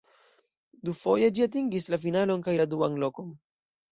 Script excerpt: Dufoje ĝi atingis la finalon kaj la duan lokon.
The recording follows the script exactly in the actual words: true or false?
true